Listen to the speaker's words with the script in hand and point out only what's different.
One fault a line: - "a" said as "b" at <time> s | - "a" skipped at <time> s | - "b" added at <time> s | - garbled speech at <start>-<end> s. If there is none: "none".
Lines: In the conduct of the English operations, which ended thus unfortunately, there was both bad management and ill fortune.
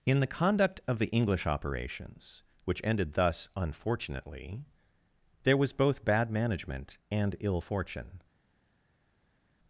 none